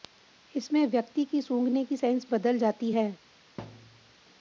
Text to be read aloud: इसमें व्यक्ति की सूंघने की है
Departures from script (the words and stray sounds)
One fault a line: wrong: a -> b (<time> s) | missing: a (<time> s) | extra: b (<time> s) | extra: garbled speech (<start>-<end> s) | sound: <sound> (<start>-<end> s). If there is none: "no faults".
extra: सेंस बदल जाती (2.0 s)
sound: thud (3.6-4.1 s)